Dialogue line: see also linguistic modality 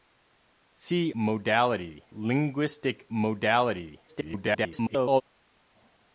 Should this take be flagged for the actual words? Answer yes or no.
yes